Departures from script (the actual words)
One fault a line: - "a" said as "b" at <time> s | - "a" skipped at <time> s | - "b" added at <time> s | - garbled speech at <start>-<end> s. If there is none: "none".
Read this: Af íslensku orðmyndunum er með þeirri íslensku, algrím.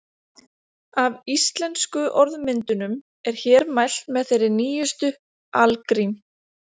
- "hér mælt" added at 3.4 s
- "íslensku" said as "nýjustu" at 4.6 s